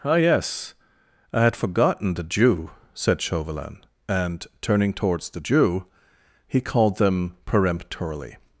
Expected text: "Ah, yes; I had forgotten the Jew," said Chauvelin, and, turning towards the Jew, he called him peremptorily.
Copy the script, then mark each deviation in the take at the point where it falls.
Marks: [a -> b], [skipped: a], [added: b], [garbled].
"Ah, yes; I had forgotten the Jew," said Chauvelin, and, turning towards the Jew, he called [him -> them] peremptorily.